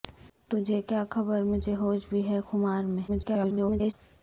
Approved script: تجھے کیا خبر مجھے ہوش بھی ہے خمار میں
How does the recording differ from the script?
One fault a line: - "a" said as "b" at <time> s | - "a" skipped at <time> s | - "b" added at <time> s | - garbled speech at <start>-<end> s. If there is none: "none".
- garbled speech at 3.1-3.9 s